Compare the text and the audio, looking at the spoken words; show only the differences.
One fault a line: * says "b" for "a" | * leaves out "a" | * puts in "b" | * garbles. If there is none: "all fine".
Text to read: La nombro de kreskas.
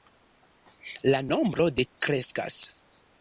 all fine